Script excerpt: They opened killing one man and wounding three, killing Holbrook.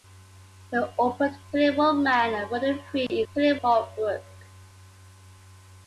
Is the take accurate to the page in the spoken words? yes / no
yes